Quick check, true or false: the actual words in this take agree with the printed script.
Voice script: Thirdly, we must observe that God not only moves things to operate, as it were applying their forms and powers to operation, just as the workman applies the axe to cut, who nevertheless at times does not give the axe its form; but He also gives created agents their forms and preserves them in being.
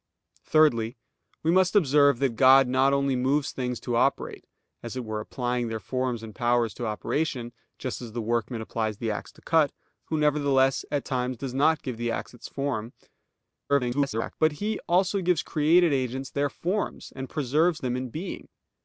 false